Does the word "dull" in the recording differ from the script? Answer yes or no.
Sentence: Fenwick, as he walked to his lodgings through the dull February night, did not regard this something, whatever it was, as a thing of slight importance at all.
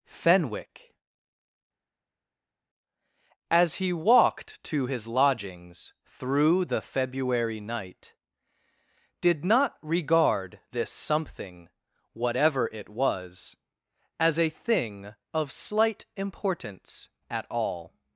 yes